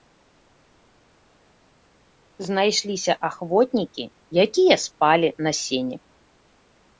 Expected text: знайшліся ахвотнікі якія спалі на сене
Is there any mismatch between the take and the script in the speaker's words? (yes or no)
no